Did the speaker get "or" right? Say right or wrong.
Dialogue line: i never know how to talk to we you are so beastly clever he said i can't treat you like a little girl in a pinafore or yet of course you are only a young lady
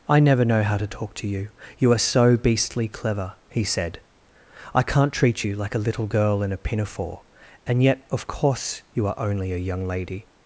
wrong